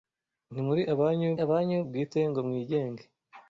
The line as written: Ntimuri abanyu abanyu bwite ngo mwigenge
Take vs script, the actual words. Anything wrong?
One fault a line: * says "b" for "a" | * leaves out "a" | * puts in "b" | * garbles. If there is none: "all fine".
all fine